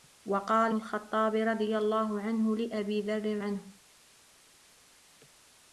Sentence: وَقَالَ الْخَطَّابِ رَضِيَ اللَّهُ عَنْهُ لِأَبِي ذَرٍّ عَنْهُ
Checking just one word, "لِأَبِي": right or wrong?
right